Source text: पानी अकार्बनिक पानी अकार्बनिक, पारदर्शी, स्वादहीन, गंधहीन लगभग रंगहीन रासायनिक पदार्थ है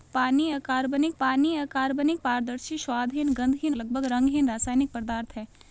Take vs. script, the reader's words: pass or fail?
pass